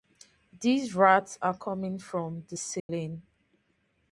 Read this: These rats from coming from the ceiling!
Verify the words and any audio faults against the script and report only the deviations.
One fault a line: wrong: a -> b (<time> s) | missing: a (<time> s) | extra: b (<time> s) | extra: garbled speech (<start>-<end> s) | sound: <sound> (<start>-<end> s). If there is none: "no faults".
wrong: from -> are (1.4 s)
sound: dropout (2.8-2.9 s)